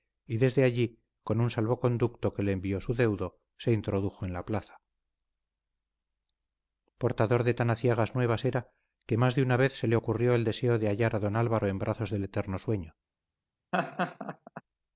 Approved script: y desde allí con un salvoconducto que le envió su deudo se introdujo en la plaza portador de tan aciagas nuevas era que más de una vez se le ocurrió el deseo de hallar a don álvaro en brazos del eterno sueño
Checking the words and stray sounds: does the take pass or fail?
fail